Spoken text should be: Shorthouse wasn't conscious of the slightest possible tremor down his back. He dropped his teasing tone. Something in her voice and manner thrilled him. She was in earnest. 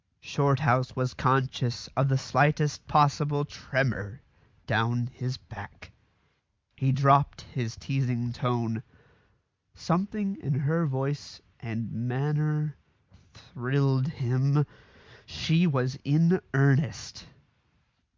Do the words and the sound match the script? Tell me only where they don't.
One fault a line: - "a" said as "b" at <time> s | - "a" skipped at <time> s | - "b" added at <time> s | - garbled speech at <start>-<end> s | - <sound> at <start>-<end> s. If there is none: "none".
- "wasn't" said as "was" at 0.9 s